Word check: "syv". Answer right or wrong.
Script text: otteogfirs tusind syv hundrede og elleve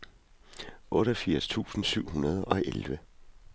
right